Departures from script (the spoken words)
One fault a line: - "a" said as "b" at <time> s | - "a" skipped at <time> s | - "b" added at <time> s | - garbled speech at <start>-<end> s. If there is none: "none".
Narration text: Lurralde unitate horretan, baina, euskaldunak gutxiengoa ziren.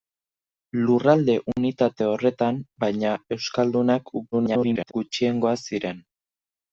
- garbled speech at 4.3-4.9 s